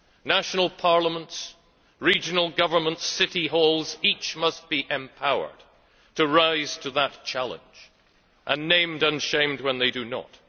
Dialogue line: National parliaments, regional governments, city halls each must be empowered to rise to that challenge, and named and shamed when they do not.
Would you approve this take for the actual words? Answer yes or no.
yes